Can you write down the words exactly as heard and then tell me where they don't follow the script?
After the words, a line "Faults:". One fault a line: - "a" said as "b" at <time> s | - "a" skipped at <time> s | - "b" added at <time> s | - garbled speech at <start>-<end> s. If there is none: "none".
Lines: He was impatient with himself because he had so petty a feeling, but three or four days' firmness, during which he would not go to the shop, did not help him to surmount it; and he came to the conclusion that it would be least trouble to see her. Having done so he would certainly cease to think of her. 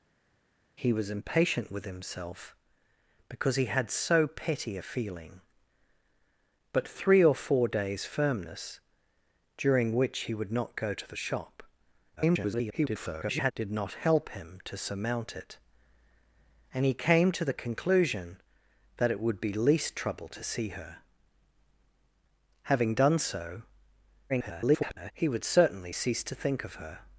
He was impatient with himself because he had so petty a feeling, but three or four days' firmness, during which he would not go to the shop, [garbled] did not help him to surmount it; and he came to the conclusion that it would be least trouble to see her. Having done so [garbled] he would certainly cease to think of her.
Faults:
- garbled speech at 12.2-13.5 s
- garbled speech at 24.3-25.1 s